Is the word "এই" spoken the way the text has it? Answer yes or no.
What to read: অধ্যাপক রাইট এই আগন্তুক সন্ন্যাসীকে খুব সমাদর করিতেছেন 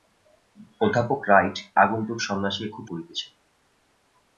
no